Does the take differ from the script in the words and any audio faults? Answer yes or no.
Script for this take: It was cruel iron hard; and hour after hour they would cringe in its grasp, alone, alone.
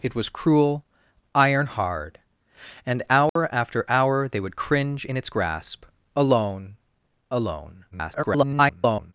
yes